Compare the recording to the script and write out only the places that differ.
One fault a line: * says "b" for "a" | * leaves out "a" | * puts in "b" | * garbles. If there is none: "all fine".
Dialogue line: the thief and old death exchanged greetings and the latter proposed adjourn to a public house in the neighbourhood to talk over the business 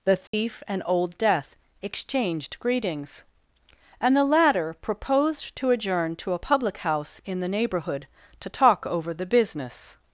* puts in "to"